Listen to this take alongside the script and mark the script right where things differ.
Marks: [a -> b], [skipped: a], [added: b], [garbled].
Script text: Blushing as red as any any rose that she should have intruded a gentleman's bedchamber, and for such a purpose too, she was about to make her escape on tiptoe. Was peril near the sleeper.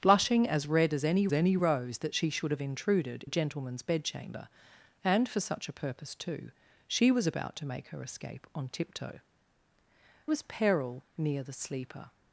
Blushing as red as any any rose that she should have intruded a gentleman's bedchamber, and for such a purpose too, she was about to make her escape on tiptoe. Was peril near the sleeper.